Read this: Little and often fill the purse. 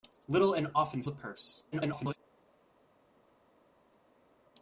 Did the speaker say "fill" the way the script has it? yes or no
no